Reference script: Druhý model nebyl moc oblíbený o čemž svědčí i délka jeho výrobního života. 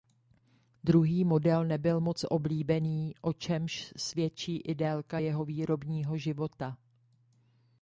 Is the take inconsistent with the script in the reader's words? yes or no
no